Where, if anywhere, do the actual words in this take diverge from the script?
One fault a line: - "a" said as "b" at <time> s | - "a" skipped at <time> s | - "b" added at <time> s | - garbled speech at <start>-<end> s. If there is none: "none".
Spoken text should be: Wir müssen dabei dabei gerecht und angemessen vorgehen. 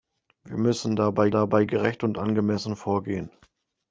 none